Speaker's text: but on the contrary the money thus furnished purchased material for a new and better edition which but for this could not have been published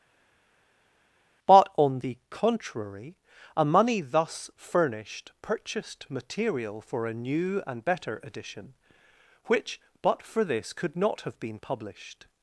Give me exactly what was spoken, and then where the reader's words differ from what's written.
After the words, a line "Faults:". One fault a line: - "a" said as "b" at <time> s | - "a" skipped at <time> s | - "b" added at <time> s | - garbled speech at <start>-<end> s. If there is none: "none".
but on the contrary a money thus furnished purchased material for a new and better edition which but for this could not have been published
Faults:
- "the" said as "a" at 3.6 s